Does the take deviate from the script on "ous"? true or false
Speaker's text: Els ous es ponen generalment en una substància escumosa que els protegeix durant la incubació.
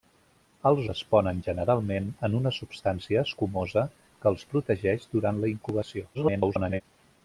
true